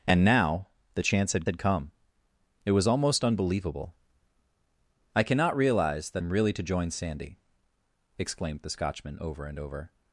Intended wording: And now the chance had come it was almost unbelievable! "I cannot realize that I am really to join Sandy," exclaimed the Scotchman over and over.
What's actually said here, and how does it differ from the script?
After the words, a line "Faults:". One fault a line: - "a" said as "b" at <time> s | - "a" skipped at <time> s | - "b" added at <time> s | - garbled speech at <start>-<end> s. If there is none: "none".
And now the chance had had come it was almost unbelievable! "I cannot realize that am really to join Sandy," exclaimed the Scotchman over and over.
Faults:
- "had" added at 1.5 s
- "I" skipped at 6.2 s